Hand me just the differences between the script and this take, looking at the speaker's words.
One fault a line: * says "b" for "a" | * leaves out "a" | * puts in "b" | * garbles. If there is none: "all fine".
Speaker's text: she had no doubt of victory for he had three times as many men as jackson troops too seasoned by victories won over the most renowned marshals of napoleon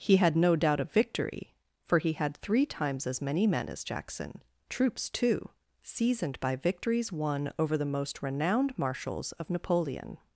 * says "he" for "she"